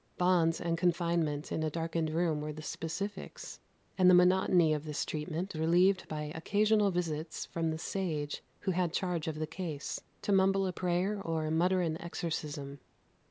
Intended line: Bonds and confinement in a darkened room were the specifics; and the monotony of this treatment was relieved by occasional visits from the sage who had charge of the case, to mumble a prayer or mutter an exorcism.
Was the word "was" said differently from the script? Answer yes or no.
yes